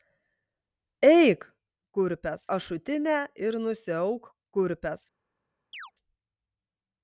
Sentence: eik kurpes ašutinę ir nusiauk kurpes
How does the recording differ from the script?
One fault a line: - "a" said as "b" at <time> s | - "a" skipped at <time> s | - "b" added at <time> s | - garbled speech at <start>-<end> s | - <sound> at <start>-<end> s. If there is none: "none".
- chirp at 5.7-5.9 s